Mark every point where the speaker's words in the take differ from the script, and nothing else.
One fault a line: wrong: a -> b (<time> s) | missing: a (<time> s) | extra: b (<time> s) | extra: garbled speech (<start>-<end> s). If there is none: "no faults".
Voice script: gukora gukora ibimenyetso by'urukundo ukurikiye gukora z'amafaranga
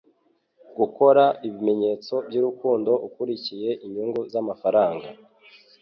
missing: gukora (1.2 s)
wrong: gukora -> inyungu (3.9 s)